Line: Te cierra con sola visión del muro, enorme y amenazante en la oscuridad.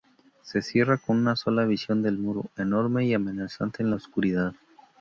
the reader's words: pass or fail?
fail